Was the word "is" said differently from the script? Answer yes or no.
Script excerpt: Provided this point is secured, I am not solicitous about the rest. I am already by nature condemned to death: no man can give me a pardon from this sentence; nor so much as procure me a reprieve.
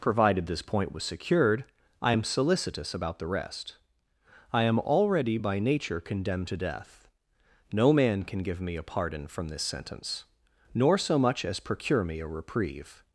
yes